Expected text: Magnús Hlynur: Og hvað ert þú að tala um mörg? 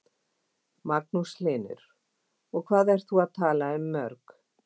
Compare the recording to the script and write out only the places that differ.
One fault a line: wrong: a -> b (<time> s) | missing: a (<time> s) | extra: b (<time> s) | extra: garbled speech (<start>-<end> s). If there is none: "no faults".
no faults